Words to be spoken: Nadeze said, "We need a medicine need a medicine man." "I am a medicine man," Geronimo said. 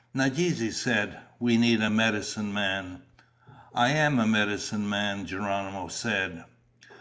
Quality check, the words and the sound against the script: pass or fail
fail